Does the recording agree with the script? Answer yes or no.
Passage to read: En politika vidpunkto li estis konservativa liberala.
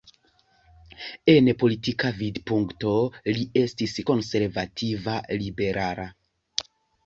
yes